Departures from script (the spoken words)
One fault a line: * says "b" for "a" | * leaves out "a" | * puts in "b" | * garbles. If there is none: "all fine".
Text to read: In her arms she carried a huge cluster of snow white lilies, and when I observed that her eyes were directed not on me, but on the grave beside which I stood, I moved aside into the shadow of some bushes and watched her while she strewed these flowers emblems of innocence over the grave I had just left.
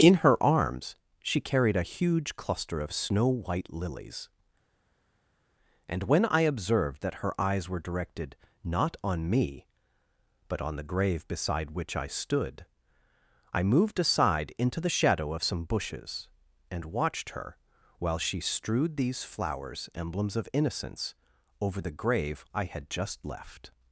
all fine